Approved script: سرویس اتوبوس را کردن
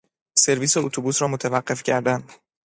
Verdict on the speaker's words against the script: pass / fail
fail